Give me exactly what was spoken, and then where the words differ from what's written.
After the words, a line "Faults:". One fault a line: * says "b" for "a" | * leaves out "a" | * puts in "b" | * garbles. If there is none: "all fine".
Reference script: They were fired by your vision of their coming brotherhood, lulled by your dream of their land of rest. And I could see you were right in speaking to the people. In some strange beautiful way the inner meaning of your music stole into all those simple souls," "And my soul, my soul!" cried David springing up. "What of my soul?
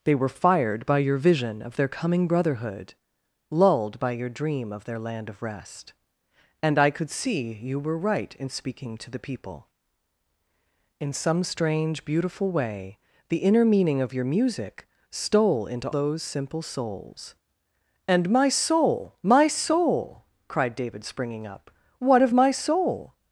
They were fired by your vision of their coming brotherhood, lulled by your dream of their land of rest. And I could see you were right in speaking to the people. In some strange beautiful way the inner meaning of your music stole into those simple souls," "And my soul, my soul!" cried David springing up. "What of my soul?
Faults:
* leaves out "all"